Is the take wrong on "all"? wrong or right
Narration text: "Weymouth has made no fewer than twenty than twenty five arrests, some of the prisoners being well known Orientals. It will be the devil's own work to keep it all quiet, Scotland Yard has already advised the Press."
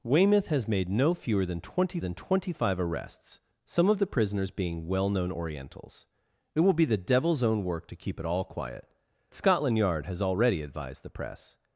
right